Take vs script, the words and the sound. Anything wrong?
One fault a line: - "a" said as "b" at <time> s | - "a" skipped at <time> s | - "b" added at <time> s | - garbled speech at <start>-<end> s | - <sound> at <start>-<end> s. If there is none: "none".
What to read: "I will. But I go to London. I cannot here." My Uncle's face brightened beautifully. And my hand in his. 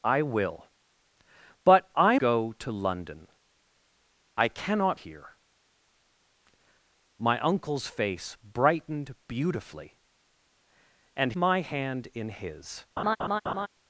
- laugh at 13.0-13.7 s